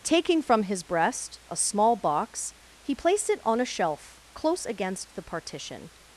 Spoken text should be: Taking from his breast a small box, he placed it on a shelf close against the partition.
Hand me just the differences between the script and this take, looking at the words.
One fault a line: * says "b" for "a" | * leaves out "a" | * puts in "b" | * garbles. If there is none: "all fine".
all fine